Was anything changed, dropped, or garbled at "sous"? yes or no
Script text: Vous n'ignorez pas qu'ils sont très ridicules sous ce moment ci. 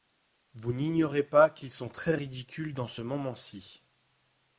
yes